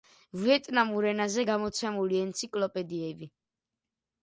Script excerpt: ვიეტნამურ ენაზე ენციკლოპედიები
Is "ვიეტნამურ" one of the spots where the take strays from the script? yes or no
no